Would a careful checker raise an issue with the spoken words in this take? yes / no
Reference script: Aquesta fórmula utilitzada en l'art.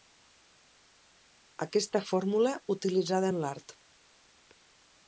no